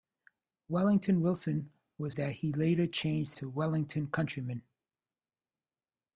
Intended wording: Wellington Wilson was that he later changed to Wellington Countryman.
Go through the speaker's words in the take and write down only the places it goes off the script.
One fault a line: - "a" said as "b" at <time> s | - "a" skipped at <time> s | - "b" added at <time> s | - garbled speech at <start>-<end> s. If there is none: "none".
none